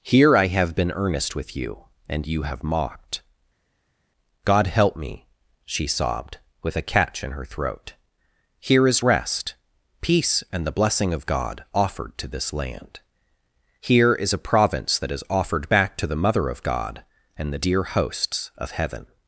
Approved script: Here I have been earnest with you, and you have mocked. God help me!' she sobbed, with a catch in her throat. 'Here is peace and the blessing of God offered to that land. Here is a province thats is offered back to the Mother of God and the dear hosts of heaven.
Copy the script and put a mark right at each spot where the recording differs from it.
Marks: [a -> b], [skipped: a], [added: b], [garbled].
Here I have been earnest with you, and you have mocked. God help me!' she sobbed, with a catch in her throat. 'Here is [added: rest] peace and the blessing of God offered to [that -> this] land. Here is a province [thats -> that] is offered back to the Mother of God and the dear hosts of heaven.